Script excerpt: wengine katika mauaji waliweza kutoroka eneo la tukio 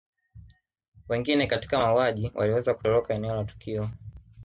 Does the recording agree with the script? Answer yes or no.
yes